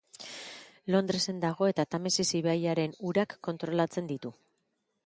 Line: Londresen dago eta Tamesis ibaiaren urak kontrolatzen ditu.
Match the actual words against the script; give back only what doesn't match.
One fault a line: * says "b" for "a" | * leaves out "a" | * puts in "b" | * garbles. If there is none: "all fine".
all fine